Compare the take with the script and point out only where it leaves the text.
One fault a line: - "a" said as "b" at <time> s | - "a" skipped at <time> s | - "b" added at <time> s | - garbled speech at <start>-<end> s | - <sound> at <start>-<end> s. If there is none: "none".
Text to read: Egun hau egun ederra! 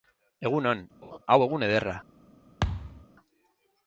- "on" added at 0.7 s
- laugh at 1.0-1.2 s
- thud at 2.6-3.1 s